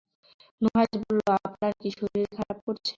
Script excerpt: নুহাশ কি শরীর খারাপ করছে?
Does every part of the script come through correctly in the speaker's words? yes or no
no